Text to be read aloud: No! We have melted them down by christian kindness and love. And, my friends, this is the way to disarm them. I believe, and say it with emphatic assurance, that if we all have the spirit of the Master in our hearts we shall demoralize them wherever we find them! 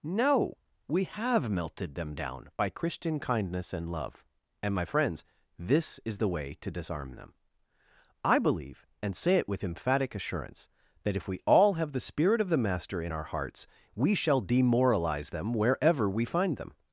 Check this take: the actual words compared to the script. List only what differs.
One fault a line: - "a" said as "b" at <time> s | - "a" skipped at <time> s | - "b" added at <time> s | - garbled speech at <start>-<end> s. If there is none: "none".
none